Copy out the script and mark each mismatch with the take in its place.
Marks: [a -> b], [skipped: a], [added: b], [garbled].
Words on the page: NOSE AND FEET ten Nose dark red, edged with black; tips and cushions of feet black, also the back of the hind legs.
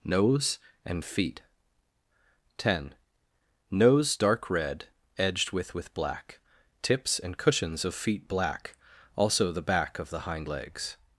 NOSE AND FEET ten Nose dark red, edged with [added: with] black; tips and cushions of feet black, also the back of the hind legs.